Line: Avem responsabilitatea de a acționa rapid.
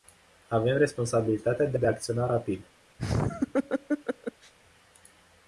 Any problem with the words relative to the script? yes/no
yes